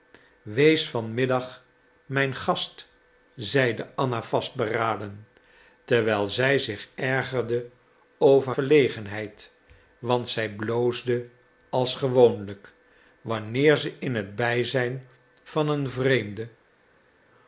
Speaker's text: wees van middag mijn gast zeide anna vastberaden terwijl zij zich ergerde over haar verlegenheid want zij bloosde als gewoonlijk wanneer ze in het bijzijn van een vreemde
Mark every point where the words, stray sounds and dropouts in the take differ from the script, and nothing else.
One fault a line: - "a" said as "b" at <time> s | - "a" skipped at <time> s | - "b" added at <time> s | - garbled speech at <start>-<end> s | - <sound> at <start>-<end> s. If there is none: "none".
- "haar" skipped at 8.6 s